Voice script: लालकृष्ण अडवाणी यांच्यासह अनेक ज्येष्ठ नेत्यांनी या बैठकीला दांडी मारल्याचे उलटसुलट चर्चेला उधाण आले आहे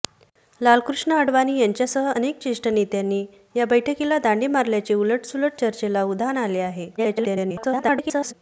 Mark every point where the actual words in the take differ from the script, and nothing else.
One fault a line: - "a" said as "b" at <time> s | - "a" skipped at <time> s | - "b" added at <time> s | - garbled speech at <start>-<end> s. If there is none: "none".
- garbled speech at 7.0-8.3 s